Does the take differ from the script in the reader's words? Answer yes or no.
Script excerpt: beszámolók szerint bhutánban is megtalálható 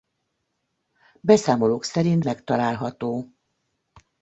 yes